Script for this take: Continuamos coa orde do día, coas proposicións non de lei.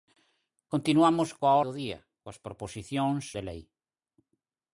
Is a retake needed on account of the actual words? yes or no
yes